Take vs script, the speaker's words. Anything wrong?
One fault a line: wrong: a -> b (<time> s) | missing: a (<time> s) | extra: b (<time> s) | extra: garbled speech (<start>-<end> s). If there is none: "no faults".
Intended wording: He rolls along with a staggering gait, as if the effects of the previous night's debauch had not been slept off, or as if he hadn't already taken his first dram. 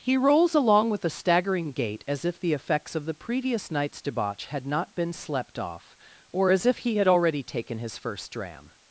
wrong: hadn't -> had (7.0 s)